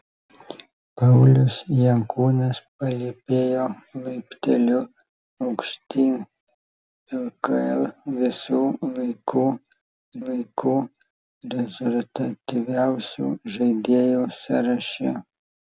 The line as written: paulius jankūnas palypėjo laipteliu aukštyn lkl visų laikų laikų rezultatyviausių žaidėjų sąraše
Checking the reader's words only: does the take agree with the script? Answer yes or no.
yes